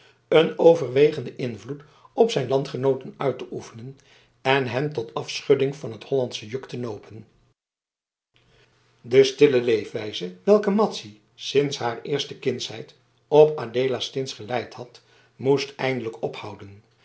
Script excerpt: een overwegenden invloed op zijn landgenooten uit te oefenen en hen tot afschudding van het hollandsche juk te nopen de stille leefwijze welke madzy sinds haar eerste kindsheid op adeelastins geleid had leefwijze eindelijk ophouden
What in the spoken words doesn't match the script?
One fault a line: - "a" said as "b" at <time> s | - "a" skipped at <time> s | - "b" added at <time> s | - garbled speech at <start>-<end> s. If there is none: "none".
- "leefwijze" said as "moest" at 15.4 s